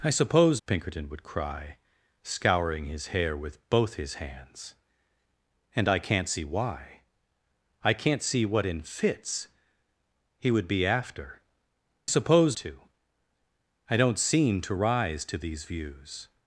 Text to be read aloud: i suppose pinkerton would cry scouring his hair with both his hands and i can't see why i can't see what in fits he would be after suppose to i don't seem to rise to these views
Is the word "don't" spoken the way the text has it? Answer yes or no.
yes